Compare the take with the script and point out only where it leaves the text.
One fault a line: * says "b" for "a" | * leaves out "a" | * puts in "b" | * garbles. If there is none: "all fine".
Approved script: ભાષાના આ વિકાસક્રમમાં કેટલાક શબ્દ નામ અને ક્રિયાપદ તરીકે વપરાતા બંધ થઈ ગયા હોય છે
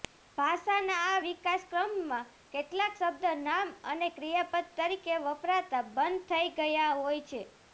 all fine